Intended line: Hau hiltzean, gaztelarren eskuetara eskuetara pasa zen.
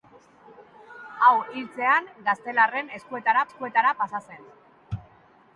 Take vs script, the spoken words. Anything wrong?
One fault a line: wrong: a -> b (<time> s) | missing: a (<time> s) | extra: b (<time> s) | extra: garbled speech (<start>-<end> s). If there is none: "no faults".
no faults